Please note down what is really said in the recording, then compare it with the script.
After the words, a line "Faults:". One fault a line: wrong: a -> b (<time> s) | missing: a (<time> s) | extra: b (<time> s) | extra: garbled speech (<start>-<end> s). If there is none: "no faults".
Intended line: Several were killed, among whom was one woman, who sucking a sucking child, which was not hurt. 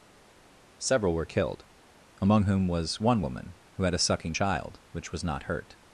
Several were killed, among whom was one woman, who had a sucking child, which was not hurt.
Faults:
wrong: sucking -> had (3.8 s)